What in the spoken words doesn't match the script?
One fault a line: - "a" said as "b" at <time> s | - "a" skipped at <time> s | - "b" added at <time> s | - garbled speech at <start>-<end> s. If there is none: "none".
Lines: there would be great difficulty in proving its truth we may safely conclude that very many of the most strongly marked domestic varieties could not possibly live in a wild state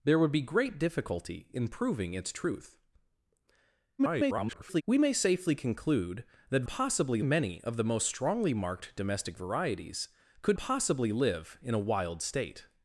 - garbled speech at 4.0-4.8 s
- "very" said as "possibly" at 6.7 s
- "not" skipped at 10.6 s